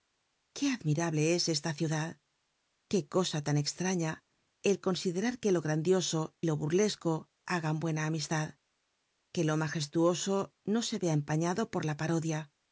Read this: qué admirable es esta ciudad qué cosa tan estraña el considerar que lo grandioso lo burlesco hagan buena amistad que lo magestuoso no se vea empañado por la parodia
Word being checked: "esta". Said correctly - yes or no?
yes